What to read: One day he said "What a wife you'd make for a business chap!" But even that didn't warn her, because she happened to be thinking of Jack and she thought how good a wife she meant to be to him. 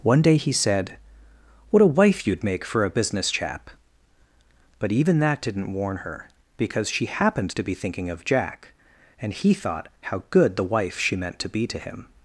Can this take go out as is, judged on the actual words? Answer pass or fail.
fail